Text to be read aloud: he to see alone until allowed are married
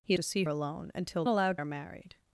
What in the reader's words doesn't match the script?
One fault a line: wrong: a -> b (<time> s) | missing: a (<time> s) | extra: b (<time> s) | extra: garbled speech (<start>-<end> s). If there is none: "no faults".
no faults